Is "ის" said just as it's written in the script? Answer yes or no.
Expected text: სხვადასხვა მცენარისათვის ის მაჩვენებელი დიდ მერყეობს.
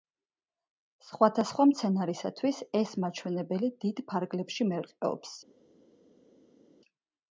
no